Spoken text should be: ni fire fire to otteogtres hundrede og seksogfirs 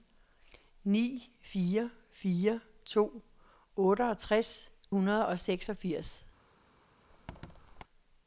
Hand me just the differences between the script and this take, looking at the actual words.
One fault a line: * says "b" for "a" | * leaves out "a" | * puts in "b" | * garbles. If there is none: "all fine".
all fine